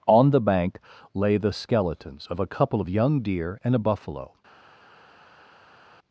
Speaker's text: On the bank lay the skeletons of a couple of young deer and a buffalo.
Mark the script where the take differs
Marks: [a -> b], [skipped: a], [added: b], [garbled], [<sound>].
On the bank lay the skeletons of a couple of young deer and a buffalo.